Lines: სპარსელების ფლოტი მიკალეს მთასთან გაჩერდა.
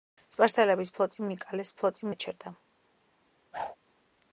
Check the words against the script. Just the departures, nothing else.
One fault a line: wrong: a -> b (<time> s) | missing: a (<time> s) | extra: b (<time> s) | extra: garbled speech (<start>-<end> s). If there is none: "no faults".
wrong: მთასთან -> ფლოტი (1.8 s)